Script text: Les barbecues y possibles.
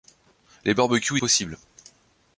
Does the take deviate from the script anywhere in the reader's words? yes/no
no